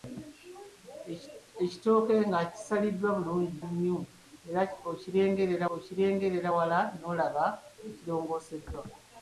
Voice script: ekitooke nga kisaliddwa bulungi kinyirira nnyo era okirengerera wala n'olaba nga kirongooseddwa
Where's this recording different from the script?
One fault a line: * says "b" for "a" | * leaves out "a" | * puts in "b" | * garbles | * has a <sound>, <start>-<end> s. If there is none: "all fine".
* leaves out "kinyirira"
* puts in "okirengerera"